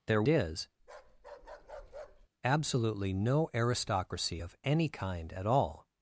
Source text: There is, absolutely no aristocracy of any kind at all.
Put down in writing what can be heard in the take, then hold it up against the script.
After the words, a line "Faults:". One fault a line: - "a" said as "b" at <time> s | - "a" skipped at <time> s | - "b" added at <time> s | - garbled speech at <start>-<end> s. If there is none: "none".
There is, absolutely no aristocracy of any kind at all.
Faults:
none